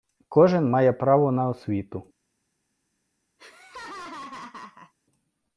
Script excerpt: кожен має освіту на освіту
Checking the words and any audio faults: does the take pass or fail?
fail